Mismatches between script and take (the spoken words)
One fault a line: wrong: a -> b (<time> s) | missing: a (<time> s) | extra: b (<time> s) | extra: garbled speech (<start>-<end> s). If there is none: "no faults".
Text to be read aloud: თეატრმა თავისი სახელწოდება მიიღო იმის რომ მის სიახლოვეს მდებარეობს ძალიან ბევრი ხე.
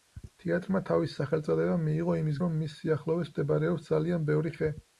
no faults